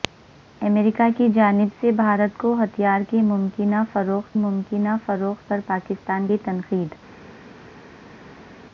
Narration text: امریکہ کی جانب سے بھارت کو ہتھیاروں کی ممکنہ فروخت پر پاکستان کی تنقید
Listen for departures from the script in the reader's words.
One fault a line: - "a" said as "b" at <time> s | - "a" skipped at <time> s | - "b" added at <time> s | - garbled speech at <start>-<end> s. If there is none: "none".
- "ممکنہ فروخت" added at 4.4 s